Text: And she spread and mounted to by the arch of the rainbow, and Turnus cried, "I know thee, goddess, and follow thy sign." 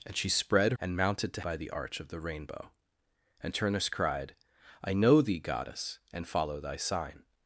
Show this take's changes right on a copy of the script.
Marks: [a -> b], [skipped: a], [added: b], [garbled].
And she spread and mounted to by the arch of the rainbow, and Turnus cried, "I know thee, goddess, and follow thy sign."